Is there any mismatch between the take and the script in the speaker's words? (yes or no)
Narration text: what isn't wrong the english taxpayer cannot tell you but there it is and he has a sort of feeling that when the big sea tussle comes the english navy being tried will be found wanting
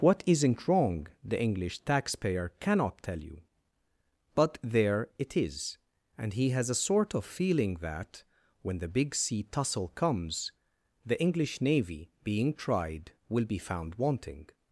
no